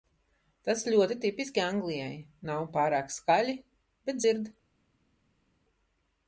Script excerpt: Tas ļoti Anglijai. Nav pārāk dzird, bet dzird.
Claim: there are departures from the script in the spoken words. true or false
true